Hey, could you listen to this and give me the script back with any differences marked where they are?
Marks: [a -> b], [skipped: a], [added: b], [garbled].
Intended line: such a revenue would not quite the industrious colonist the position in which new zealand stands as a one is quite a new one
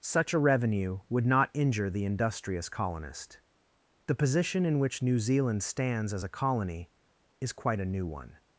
such a revenue would not [quite -> injure] the industrious colonist the position in which new zealand stands as a [one -> colony] is quite a new one